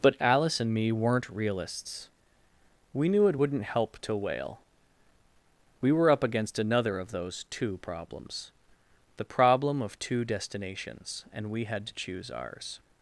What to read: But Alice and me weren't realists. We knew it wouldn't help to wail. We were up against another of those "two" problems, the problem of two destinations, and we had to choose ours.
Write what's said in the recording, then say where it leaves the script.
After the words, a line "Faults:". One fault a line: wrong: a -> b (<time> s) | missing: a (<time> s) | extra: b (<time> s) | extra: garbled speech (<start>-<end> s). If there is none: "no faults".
But Alice and me weren't realists. We knew it wouldn't help to wail. We were up against another of those "two" problems, the problem of two destinations, and we had to choose ours.
Faults:
no faults